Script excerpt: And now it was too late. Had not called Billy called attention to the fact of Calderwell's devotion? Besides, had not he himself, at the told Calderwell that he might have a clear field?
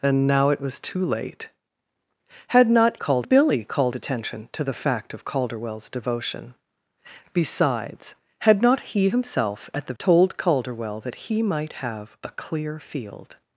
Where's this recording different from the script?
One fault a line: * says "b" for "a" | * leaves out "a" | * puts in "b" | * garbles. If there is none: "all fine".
all fine